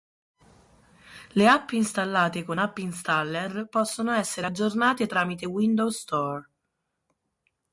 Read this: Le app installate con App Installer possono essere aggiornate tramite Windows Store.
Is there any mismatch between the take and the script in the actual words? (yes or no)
no